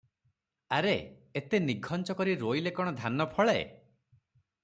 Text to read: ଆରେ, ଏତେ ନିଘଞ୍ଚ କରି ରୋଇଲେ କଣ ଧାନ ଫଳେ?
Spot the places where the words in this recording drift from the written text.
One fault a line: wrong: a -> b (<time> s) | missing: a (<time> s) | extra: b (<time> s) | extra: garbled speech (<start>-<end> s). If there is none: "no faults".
no faults